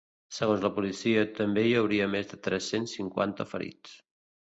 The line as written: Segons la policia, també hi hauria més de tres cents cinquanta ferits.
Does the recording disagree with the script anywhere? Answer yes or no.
no